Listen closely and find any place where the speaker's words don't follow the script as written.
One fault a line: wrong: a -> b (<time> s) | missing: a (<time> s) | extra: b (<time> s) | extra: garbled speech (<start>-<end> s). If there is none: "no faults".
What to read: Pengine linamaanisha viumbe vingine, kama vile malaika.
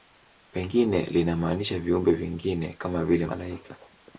no faults